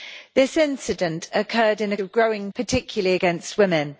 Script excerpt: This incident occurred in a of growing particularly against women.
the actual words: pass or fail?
pass